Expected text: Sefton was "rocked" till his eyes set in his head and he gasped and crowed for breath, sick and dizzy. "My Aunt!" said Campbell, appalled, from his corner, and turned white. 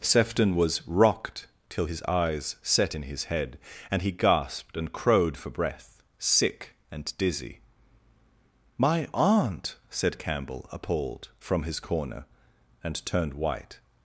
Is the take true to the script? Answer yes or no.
yes